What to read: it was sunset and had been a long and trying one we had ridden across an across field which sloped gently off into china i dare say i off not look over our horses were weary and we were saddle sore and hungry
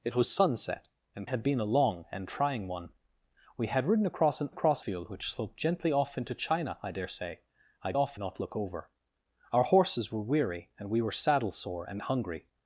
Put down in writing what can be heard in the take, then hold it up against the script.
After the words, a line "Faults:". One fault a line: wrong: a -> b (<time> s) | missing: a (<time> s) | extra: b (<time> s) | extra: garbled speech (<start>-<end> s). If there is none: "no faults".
it was sunset and had been a long and trying one we had ridden across an across field which sloped gently off into china i dare say i off not look over our horses were weary and we were saddle sore and hungry
Faults:
no faults